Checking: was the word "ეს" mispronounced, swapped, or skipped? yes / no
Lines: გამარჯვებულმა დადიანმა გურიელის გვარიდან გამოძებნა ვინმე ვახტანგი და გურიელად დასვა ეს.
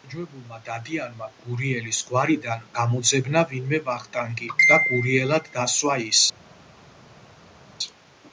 yes